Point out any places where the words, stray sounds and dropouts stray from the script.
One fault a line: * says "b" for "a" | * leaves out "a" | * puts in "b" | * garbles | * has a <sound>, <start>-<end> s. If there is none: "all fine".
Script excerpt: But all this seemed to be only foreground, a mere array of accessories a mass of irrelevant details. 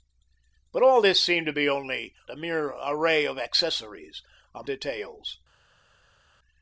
* leaves out "foreground"
* leaves out "mass of irrelevant"